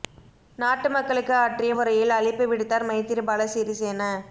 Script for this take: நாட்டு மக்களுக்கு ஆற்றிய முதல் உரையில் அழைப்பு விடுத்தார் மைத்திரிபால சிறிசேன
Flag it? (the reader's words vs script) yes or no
yes